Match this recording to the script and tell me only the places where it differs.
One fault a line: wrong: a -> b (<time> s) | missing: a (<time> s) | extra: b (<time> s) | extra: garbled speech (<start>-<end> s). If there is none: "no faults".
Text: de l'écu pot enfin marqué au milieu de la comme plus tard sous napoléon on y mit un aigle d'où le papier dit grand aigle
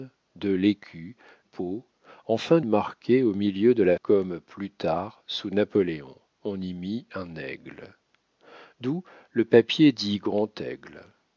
no faults